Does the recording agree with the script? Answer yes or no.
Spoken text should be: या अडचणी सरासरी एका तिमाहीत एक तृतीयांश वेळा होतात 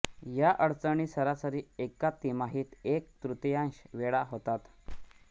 yes